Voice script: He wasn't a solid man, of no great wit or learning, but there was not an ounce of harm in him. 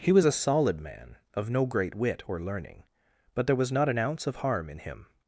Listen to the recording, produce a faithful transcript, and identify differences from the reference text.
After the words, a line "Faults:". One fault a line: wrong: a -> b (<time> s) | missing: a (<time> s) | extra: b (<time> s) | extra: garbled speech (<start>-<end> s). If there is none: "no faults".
He was a solid man, of no great wit or learning, but there was not an ounce of harm in him.
Faults:
wrong: wasn't -> was (0.1 s)